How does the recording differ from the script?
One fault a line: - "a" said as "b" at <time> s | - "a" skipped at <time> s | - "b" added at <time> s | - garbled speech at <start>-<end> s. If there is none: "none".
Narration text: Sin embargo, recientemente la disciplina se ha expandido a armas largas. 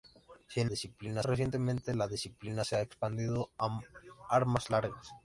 - "embargo" said as "disciplina" at 0.6 s